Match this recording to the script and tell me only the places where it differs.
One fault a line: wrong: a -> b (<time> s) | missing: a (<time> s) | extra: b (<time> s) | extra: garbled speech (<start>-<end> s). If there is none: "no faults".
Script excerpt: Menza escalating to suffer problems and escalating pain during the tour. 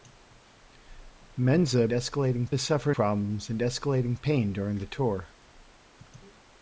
no faults